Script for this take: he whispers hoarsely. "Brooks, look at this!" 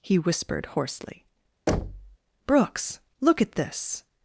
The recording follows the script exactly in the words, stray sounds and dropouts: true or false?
false